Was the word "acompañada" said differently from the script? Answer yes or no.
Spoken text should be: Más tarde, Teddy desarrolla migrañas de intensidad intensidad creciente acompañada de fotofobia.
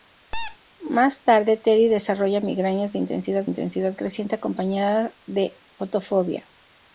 no